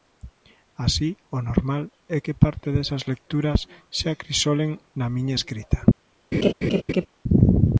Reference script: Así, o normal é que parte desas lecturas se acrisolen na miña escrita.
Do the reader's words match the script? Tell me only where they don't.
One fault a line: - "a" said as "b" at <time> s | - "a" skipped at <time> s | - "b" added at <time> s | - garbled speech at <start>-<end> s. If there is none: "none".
none